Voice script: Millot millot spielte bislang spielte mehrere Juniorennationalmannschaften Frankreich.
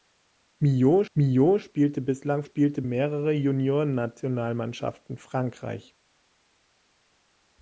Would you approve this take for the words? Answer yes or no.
yes